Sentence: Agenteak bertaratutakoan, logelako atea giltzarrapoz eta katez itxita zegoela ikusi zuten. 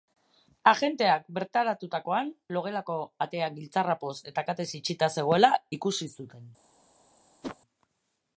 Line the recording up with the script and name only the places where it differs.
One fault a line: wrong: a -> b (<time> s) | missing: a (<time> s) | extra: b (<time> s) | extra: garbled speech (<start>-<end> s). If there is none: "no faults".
no faults